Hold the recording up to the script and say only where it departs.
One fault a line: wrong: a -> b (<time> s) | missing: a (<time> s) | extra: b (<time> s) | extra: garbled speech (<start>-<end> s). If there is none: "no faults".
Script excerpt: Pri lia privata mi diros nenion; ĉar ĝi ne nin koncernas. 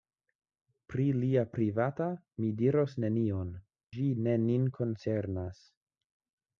missing: ĉar (3.5 s)